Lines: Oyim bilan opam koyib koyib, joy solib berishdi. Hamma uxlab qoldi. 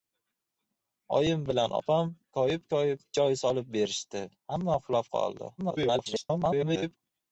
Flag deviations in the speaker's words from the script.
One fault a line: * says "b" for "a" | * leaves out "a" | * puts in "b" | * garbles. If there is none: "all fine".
* garbles